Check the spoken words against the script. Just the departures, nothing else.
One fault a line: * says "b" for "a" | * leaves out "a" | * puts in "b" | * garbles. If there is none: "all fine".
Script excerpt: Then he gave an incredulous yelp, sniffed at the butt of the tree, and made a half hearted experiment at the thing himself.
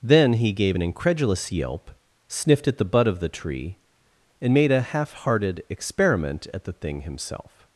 all fine